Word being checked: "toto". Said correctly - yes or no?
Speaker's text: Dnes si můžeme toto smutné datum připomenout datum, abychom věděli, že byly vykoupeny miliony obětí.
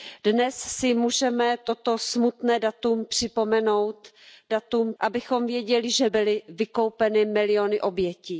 yes